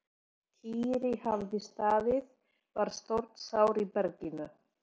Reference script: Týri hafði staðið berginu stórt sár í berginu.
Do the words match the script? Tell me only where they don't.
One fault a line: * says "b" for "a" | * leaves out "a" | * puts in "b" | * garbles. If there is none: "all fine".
* says "var" for "berginu"